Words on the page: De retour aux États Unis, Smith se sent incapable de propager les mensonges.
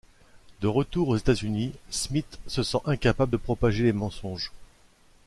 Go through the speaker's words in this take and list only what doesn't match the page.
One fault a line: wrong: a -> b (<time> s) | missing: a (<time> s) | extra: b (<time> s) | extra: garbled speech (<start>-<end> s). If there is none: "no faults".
no faults